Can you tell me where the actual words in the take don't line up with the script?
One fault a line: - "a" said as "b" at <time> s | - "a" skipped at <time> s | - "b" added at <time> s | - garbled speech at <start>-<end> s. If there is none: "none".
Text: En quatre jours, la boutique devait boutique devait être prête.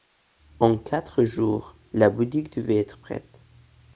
- "boutique devait" skipped at 2.8 s